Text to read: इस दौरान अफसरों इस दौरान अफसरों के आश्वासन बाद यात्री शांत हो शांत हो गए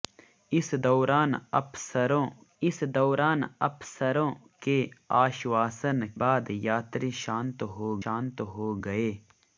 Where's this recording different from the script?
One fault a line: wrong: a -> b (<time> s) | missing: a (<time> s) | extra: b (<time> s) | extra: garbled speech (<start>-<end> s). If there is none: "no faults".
no faults